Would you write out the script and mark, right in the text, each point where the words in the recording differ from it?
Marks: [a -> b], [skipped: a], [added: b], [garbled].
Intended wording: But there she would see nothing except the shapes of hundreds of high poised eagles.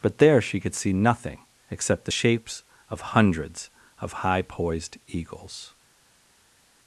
But there she [would -> could] see nothing except the shapes of hundreds of high poised eagles.